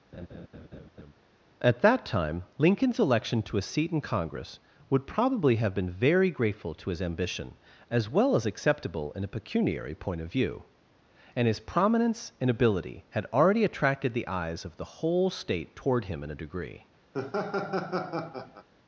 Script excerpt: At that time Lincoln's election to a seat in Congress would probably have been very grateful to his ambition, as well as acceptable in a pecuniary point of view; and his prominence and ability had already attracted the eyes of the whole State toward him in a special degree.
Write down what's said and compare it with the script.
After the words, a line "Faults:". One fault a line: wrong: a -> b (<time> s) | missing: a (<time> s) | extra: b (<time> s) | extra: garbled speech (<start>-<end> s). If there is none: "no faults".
At that time Lincoln's election to a seat in Congress would probably have been very grateful to his ambition, as well as acceptable in a pecuniary point of view; and his prominence and ability had already attracted the eyes of the whole State toward him in a degree.
Faults:
missing: special (16.4 s)